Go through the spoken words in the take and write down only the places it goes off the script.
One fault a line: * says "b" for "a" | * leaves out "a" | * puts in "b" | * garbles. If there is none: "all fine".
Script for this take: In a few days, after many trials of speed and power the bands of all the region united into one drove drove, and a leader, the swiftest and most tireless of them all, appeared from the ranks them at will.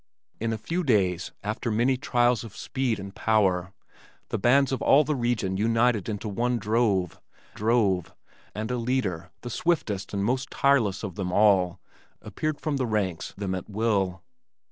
all fine